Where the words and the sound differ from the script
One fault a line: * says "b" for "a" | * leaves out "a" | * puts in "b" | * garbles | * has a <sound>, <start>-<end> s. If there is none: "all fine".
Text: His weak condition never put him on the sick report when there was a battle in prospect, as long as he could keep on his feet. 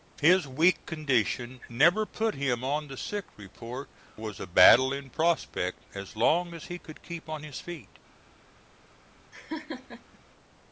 * leaves out "when there"
* has a laugh, 9.3-10.2 s